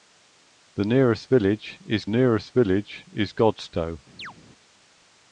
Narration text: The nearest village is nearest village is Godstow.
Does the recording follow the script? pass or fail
pass